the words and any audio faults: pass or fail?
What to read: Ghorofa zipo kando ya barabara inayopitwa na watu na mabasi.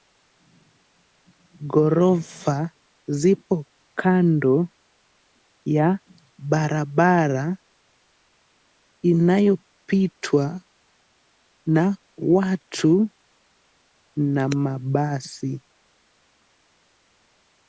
pass